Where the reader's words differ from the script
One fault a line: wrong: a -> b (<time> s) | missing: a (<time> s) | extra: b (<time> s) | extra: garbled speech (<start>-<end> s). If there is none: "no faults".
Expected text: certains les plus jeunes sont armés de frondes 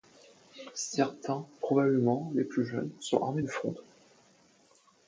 extra: probablement (1.6 s)